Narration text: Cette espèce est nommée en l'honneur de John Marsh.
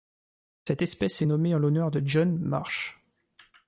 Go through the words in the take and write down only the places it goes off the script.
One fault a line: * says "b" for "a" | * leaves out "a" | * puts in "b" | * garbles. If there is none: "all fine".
all fine